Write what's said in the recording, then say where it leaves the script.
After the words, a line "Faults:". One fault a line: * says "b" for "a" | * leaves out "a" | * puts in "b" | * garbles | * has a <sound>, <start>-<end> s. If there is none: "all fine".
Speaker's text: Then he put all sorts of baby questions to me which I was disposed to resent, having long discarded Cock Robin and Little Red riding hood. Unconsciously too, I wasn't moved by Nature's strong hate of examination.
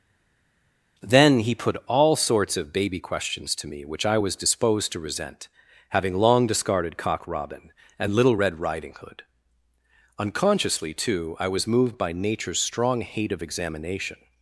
Then he put all sorts of baby questions to me which I was disposed to resent, having long discarded Cock Robin and Little Red riding hood. Unconsciously too, I was moved by Nature's strong hate of examination.
Faults:
* says "was" for "wasn't"